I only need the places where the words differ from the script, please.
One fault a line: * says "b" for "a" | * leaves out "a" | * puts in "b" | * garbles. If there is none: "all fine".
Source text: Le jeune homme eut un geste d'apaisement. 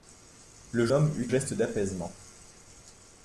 * leaves out "jeune"
* leaves out "un"